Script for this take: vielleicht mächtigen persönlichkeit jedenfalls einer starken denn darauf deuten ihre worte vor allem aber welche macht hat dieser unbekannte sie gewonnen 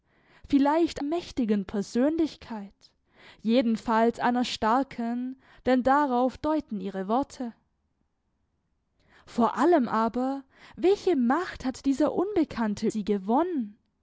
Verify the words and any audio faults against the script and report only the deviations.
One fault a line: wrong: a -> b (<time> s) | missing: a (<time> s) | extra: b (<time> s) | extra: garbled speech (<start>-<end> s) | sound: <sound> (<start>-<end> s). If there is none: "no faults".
no faults